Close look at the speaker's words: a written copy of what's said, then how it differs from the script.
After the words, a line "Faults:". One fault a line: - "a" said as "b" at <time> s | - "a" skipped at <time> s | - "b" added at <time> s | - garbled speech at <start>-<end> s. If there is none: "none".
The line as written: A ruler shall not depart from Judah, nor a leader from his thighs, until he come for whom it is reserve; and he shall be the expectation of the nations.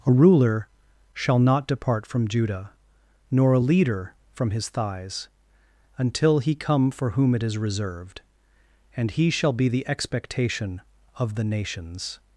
A ruler shall not depart from Judah, nor a leader from his thighs, until he come for whom it is reserved; and he shall be the expectation of the nations.
Faults:
- "reserve" said as "reserved" at 7.6 s